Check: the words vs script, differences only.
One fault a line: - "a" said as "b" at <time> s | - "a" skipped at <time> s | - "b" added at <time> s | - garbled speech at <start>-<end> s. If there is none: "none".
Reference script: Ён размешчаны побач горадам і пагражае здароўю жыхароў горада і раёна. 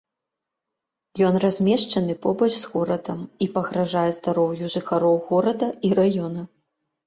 - "з" added at 2.6 s